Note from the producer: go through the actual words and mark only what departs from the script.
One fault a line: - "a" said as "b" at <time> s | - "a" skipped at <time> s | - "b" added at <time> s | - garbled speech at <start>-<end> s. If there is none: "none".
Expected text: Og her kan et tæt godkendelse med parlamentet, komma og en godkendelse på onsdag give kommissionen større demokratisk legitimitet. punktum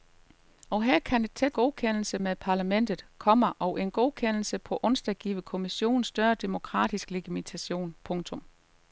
none